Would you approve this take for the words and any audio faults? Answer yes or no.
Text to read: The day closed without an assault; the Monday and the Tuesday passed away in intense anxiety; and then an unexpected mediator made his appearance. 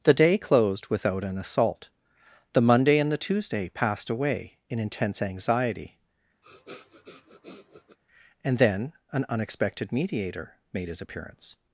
no